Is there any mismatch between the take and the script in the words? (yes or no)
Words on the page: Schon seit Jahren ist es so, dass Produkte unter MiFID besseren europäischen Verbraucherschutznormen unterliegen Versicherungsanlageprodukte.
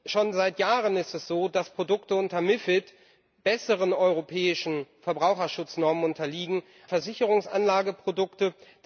no